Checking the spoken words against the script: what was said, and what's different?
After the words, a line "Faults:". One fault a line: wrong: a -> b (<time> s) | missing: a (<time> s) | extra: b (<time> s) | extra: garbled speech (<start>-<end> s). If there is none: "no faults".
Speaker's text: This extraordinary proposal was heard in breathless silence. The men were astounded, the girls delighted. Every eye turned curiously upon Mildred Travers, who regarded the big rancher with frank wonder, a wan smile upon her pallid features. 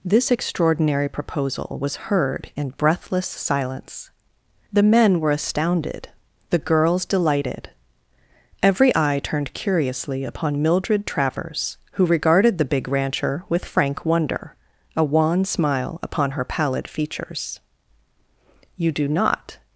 This extraordinary proposal was heard in breathless silence. The men were astounded, the girls delighted. Every eye turned curiously upon Mildred Travers, who regarded the big rancher with frank wonder, a wan smile upon her pallid features. "You do not
Faults:
extra: You do not (18.7 s)